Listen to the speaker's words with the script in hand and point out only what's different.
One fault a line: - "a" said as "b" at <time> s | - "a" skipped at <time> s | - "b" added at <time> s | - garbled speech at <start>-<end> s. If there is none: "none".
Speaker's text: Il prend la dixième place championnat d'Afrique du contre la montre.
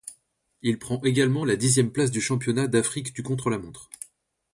- "également" added at 1.0 s
- "du" added at 2.1 s